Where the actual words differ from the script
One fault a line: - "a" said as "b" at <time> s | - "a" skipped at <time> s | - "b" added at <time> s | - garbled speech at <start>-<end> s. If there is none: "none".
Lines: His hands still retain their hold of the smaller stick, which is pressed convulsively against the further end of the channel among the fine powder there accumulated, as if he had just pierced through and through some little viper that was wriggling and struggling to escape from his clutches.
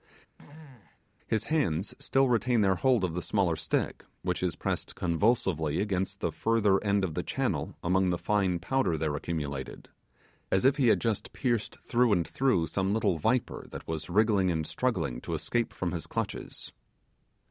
none